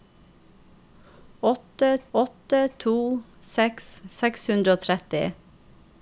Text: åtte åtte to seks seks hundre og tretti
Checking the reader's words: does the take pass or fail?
pass